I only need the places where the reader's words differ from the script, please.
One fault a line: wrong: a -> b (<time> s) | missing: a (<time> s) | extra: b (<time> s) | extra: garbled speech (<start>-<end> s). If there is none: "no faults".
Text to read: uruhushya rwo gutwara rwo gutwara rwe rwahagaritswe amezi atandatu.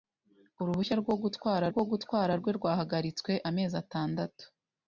no faults